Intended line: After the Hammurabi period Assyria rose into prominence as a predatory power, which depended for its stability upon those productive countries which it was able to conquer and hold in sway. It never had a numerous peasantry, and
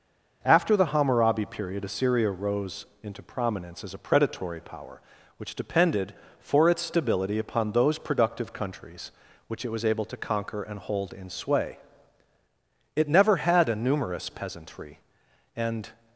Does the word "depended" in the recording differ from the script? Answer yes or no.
no